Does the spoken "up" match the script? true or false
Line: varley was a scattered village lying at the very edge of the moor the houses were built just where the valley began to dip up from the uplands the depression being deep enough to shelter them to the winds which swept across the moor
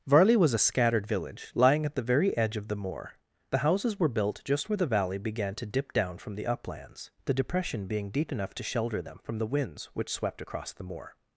false